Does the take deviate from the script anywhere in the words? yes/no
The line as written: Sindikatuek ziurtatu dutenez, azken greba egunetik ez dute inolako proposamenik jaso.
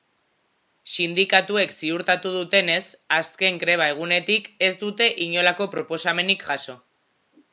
no